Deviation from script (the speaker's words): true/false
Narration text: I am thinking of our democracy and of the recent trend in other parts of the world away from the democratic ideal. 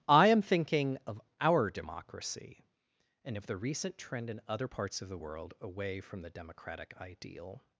false